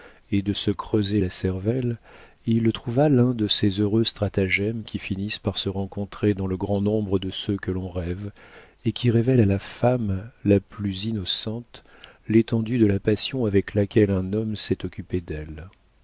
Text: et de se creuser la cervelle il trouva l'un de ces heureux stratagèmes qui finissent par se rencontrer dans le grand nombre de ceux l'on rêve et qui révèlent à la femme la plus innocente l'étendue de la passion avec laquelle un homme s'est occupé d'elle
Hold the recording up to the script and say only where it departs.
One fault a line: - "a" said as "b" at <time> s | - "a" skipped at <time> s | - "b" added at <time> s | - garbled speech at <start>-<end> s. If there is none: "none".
- "que" added at 7.6 s